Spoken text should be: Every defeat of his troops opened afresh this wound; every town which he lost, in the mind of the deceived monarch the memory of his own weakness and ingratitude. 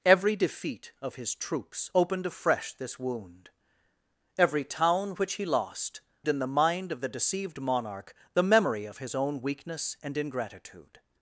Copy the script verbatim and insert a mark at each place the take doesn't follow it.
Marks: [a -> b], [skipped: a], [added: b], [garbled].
Every defeat of his troops opened afresh this wound; every town which he lost, in the mind of the deceived monarch the memory of his own weakness and ingratitude.